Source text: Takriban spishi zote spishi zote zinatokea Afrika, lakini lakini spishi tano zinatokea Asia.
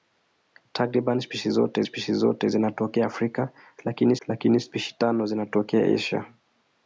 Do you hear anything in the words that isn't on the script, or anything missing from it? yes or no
no